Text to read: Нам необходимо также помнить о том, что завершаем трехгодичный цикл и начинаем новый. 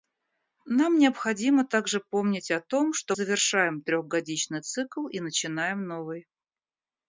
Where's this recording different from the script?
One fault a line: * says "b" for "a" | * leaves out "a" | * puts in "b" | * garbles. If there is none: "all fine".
all fine